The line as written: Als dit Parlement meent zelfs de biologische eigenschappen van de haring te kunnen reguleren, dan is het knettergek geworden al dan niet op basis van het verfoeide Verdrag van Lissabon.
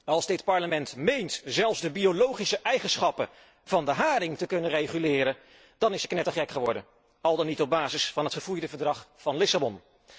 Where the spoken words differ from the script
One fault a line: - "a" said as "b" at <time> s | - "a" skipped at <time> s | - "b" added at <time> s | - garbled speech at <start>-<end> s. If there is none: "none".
none